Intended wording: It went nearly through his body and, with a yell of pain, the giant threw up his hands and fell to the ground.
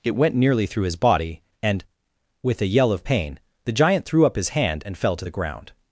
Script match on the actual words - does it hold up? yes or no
no